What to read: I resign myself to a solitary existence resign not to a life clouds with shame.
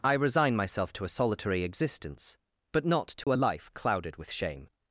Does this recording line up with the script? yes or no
no